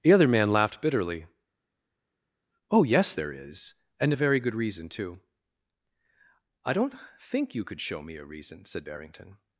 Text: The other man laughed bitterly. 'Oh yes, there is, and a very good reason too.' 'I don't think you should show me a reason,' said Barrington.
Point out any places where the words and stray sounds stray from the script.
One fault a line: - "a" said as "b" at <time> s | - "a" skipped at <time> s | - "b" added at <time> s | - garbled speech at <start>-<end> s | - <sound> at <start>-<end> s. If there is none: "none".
- "should" said as "could" at 7.6 s